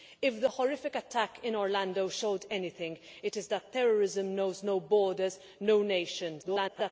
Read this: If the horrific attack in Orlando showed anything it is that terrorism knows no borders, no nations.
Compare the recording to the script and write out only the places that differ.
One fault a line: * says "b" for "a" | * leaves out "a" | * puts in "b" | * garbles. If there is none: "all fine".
* garbles